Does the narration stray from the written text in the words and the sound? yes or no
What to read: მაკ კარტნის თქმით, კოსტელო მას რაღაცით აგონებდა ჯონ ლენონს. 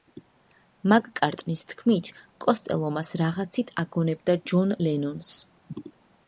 no